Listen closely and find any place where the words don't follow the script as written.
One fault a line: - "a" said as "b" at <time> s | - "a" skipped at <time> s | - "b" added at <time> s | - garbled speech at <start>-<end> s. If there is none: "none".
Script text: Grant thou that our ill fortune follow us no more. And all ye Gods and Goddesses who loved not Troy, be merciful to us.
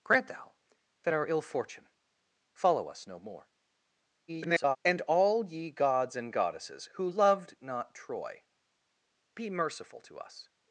- garbled speech at 4.3-4.8 s